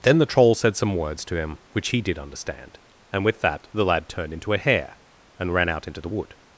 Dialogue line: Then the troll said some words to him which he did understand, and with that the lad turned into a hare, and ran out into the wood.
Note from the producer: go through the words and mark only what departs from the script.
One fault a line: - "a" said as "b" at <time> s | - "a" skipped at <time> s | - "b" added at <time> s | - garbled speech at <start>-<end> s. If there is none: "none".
none